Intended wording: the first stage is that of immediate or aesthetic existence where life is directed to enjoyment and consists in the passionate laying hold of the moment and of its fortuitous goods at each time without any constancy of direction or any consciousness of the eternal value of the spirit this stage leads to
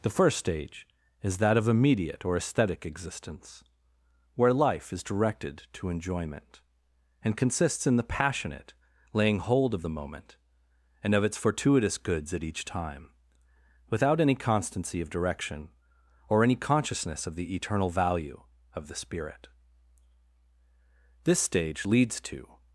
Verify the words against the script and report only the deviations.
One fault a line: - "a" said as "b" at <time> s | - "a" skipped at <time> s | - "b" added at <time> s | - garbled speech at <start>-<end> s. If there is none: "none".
none